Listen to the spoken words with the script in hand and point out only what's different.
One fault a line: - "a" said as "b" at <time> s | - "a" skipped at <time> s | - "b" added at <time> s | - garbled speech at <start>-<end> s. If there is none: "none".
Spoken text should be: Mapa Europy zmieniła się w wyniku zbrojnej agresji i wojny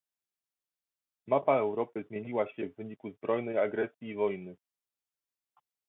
none